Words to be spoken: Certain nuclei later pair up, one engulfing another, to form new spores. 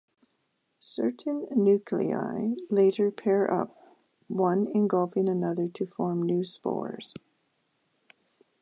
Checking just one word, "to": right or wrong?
right